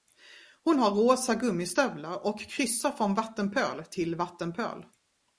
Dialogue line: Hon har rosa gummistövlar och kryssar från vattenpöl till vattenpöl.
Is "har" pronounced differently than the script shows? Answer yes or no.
no